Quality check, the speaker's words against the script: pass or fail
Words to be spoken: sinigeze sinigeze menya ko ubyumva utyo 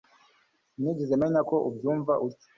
fail